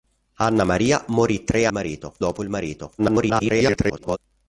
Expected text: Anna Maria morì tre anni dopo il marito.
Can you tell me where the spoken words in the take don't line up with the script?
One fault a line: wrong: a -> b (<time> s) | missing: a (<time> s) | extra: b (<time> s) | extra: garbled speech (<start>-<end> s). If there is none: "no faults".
wrong: anni -> marito (1.7 s)
extra: garbled speech (3.0-4.2 s)